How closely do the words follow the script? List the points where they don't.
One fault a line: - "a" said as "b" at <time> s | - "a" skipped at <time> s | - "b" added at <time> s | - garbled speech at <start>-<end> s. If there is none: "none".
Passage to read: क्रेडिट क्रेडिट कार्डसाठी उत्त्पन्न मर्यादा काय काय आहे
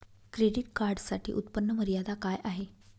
- "क्रेडिट" skipped at 0.7 s
- "काय" skipped at 2.4 s